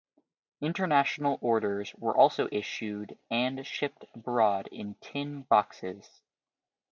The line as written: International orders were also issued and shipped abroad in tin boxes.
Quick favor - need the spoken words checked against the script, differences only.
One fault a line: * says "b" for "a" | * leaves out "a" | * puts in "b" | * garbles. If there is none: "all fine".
all fine